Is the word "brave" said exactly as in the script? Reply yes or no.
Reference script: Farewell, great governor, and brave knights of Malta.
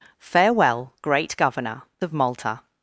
no